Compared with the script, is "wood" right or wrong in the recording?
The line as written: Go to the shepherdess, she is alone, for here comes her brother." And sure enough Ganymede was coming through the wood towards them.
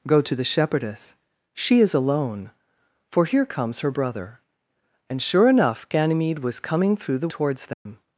wrong